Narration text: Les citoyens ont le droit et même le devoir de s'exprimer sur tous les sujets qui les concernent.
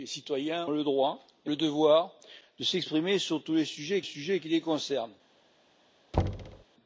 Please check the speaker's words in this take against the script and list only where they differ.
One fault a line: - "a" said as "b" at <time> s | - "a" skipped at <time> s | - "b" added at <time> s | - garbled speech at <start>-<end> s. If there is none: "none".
- "ont" skipped at 0.7 s
- "même" skipped at 1.5 s
- "sujets" added at 4.0 s